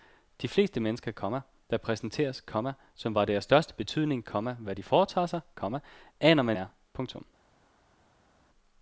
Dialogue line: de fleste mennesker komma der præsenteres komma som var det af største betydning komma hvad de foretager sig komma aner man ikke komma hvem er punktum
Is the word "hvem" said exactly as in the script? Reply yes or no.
no